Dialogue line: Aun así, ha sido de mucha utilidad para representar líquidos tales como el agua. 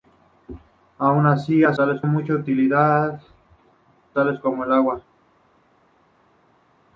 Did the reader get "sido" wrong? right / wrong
wrong